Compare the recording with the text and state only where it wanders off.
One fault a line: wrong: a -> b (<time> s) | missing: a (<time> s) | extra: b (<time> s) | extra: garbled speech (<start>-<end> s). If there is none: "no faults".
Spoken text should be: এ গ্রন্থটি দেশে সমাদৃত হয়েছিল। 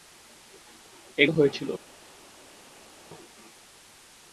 missing: গ্রন্থটি দেশে সমাদৃত (1.2 s)